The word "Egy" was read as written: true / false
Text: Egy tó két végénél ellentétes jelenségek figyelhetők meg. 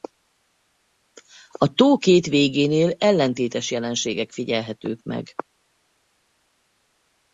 false